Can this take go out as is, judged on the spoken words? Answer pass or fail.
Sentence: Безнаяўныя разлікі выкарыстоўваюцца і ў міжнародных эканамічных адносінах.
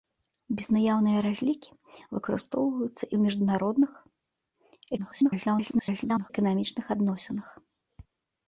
fail